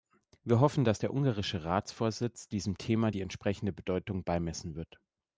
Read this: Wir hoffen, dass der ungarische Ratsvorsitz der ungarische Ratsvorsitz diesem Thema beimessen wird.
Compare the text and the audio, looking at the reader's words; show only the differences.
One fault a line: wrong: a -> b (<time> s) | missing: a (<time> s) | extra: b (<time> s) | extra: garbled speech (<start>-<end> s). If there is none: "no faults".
wrong: der ungarische Ratsvorsitz diesem Thema -> diesem Thema die entsprechende Bedeutung (2.5 s)